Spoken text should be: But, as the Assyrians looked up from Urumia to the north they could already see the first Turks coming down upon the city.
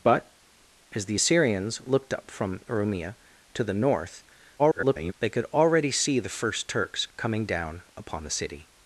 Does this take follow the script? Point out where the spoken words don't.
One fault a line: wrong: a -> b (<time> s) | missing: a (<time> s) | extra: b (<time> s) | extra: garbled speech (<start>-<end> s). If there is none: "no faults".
extra: garbled speech (4.6-5.1 s)